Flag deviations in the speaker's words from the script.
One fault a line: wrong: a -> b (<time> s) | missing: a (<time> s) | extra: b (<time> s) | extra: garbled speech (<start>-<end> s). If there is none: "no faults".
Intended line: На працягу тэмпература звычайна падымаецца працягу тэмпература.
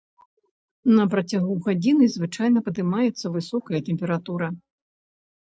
wrong: тэмпература -> гадзіны (1.7 s)
wrong: працягу -> высокая (3.4 s)